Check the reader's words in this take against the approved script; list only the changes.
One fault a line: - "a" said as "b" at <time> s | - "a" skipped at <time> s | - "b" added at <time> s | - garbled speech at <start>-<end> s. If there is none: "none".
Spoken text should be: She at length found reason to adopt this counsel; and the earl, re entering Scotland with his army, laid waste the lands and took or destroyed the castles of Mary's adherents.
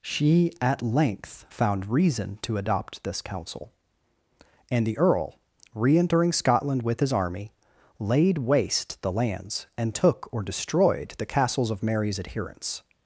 none